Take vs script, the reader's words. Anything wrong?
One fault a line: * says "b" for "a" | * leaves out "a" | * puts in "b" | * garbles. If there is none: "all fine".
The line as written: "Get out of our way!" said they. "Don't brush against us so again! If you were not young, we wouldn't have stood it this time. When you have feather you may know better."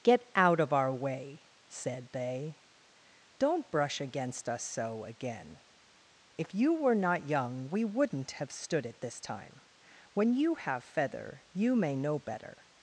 all fine